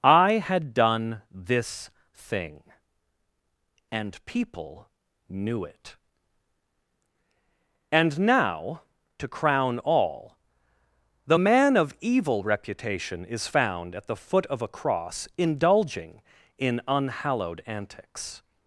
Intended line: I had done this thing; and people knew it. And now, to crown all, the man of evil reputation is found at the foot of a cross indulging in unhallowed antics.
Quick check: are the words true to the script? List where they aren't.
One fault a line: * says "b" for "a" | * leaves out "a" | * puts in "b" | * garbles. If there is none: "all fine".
all fine